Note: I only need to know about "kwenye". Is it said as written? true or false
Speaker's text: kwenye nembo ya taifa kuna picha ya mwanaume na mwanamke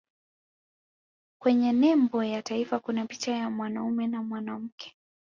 true